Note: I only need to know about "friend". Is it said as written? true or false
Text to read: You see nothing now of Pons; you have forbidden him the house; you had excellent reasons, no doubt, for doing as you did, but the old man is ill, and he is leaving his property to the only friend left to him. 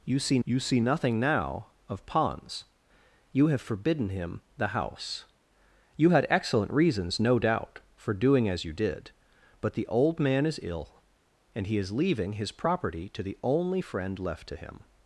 true